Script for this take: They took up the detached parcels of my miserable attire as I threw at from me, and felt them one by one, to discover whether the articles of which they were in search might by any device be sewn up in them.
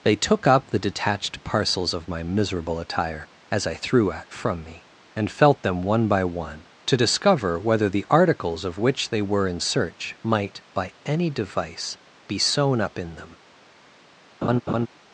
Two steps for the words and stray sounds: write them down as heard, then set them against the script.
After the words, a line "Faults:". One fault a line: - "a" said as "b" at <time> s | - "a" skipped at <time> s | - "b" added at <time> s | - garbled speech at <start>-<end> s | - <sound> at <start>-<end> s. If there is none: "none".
They took up the detached parcels of my miserable attire as I threw at from me, and felt them one by one, to discover whether the articles of which they were in search might by any device be sewn up in them.
Faults:
- laugh at 14.4-14.9 s